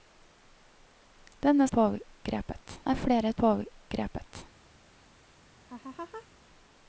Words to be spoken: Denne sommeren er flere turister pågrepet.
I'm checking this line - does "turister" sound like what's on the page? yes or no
no